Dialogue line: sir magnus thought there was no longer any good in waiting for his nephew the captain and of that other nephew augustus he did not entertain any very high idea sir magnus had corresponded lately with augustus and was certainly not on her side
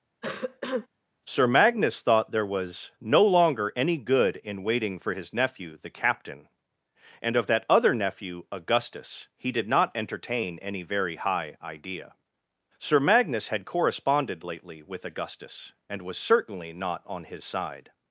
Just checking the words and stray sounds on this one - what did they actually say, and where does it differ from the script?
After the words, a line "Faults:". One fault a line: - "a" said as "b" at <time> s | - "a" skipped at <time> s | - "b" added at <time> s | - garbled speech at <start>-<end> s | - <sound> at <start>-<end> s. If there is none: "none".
sir magnus thought there was no longer any good in waiting for his nephew the captain and of that other nephew augustus he did not entertain any very high idea sir magnus had corresponded lately with augustus and was certainly not on his side
Faults:
- cough at 0.2-0.9 s
- "her" said as "his" at 17.2 s